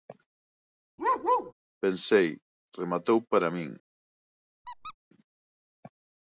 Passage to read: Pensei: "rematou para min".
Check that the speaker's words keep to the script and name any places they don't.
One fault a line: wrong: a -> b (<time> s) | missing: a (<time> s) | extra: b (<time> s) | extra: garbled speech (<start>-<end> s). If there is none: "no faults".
no faults